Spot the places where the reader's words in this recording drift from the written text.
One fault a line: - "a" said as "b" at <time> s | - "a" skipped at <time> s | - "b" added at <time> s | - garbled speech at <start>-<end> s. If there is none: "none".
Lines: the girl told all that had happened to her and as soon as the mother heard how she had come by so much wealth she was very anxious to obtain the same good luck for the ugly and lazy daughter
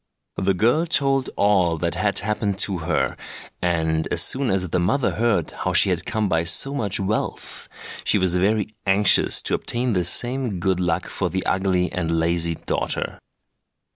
none